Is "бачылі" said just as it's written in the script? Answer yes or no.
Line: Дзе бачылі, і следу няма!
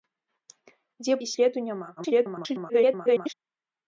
no